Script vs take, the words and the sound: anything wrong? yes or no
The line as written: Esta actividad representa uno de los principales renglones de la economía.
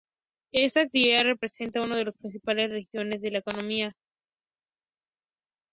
no